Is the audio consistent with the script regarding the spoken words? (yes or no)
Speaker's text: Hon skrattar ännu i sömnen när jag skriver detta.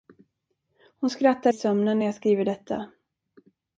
no